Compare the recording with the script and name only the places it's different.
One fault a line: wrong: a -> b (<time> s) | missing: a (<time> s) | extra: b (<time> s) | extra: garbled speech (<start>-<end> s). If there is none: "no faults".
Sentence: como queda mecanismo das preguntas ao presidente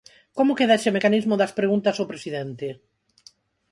extra: ese (0.8 s)